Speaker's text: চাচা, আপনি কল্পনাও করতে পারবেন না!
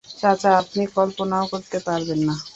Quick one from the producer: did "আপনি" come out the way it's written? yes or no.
yes